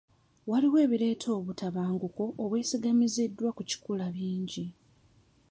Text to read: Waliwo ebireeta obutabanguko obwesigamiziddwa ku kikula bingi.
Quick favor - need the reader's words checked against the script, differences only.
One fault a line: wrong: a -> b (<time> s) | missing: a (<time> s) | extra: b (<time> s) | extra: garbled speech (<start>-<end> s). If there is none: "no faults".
no faults